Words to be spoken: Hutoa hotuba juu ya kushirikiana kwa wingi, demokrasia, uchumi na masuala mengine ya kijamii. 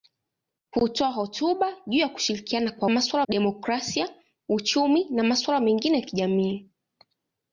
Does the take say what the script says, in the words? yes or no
no